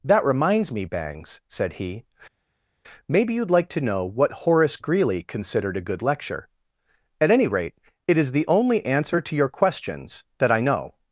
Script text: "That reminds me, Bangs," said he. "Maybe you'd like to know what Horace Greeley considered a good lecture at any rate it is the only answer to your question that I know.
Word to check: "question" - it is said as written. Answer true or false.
false